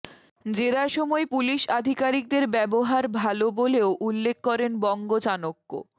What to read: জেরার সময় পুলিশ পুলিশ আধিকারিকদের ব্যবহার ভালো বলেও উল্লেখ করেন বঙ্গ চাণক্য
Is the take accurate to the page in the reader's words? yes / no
no